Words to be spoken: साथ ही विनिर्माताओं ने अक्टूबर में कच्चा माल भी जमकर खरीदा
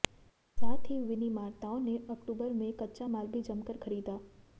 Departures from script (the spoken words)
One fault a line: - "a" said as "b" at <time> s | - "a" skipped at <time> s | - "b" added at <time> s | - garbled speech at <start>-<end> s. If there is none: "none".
none